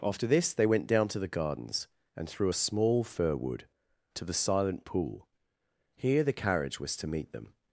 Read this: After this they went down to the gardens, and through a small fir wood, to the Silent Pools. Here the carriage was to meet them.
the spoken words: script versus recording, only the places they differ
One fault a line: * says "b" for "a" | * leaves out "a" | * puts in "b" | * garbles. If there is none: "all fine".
* says "Pool" for "Pools"